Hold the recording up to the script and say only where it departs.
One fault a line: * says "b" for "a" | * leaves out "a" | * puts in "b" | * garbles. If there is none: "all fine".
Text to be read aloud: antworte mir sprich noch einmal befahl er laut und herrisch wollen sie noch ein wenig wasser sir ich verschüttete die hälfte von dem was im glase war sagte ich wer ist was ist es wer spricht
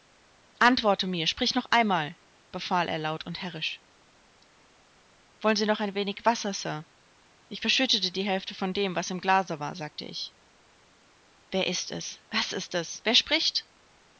* puts in "es"